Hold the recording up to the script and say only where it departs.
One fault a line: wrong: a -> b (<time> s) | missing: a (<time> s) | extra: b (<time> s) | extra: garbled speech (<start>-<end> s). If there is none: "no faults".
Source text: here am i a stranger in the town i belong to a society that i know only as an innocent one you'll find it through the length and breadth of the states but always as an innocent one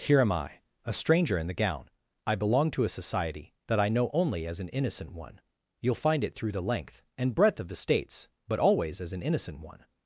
wrong: town -> gown (1.5 s)